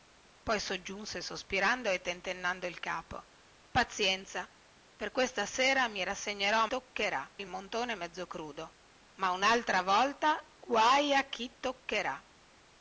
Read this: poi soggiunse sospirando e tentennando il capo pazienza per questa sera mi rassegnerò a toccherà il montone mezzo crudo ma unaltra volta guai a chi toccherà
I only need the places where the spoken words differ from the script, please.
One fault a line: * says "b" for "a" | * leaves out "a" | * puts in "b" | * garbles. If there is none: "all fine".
all fine